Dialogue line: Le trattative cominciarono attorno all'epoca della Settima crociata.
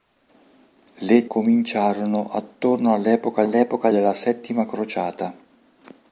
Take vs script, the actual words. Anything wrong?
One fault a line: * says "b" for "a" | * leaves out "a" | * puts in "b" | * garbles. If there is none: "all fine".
* leaves out "trattative"
* puts in "all'epoca"